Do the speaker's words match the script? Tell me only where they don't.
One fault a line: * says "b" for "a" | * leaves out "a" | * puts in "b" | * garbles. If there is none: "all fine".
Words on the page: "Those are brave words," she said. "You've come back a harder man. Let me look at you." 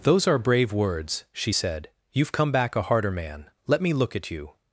all fine